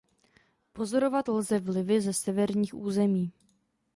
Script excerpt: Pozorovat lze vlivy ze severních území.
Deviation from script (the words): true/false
false